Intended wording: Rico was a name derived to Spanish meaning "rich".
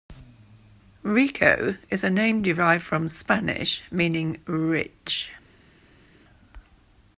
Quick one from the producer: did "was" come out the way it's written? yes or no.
no